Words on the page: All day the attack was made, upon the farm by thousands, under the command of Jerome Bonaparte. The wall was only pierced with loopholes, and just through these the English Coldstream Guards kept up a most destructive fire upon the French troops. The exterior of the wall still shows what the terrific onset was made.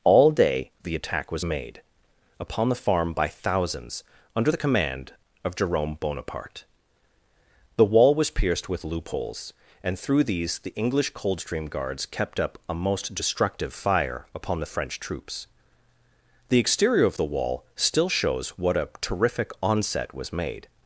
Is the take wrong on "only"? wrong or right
wrong